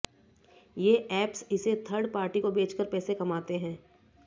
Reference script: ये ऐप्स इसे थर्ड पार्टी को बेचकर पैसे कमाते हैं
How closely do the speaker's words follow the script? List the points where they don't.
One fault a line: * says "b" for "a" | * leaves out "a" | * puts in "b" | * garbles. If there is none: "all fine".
all fine